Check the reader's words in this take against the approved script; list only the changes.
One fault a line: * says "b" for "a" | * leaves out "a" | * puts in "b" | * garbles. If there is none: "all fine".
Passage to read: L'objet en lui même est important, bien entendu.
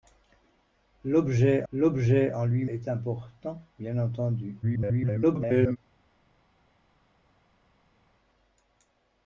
* puts in "l'objet"
* leaves out "même"
* garbles